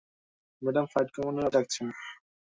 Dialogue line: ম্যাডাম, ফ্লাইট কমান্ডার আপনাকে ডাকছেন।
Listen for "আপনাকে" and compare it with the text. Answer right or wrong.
wrong